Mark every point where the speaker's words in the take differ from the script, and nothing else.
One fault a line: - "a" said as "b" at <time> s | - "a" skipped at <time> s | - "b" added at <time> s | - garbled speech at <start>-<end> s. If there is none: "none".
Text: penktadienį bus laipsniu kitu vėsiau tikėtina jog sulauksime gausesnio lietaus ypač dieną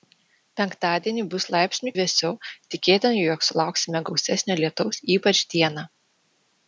- "kitu" skipped at 1.9 s